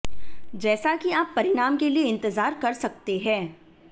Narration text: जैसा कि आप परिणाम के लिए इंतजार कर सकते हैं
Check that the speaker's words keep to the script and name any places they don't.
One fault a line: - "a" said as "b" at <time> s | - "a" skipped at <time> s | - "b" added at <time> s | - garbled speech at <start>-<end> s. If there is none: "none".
none